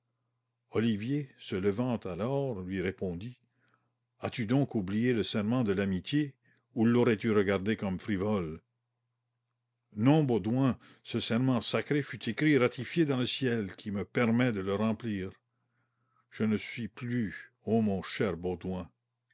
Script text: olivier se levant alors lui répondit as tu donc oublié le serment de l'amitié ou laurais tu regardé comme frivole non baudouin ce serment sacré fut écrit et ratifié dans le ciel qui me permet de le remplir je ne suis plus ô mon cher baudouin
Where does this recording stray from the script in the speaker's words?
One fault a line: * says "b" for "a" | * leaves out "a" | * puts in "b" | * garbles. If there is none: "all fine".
all fine